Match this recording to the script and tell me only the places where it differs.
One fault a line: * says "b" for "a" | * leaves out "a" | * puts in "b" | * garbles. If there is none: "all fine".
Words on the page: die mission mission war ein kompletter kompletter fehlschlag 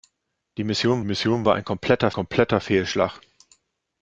all fine